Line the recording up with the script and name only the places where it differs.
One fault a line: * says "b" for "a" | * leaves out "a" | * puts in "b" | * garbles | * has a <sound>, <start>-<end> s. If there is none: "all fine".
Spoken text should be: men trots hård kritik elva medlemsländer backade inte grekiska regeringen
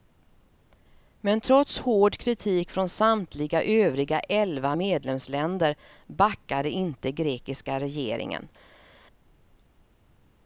* puts in "från samtliga övriga"